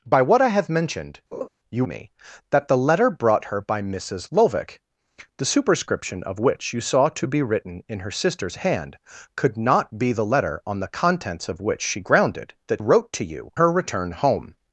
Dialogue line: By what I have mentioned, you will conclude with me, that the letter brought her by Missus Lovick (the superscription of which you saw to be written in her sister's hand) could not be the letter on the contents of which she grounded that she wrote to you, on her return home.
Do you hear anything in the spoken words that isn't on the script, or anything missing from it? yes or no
yes